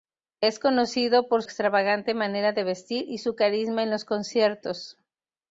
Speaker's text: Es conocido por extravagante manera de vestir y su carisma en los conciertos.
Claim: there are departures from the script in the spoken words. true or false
false